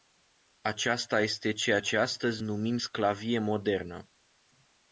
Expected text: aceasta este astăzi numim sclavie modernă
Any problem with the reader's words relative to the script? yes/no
yes